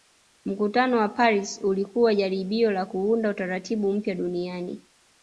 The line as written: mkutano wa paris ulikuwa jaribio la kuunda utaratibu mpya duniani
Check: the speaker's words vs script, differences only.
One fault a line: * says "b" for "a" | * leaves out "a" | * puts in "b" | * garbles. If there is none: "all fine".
all fine